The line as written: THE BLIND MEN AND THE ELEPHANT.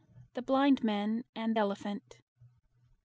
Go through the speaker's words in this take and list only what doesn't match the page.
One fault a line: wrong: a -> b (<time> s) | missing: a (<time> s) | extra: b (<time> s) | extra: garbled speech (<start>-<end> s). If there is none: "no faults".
missing: THE (1.6 s)